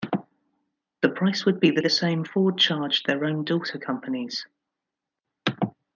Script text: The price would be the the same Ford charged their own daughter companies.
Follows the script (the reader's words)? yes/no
yes